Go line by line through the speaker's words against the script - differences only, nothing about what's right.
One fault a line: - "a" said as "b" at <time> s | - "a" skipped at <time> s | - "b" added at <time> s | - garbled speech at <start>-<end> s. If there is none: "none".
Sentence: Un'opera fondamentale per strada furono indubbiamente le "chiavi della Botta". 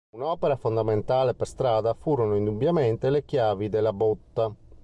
none